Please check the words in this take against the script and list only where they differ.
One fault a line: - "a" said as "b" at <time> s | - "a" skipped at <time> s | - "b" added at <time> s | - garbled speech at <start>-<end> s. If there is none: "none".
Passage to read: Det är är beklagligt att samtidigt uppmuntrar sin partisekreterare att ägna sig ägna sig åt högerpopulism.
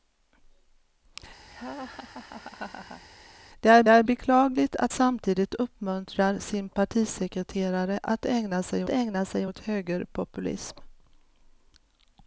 none